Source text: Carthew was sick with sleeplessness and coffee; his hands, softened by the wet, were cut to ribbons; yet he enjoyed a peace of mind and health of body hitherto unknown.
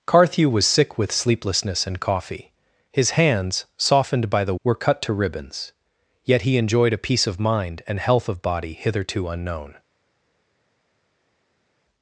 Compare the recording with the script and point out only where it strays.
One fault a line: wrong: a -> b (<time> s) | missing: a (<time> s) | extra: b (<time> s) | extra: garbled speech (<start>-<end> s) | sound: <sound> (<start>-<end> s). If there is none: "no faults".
missing: wet (4.5 s)